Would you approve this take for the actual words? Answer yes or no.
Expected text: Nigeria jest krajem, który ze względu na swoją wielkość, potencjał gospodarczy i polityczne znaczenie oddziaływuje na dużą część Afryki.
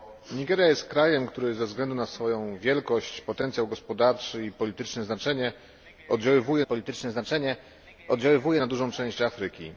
no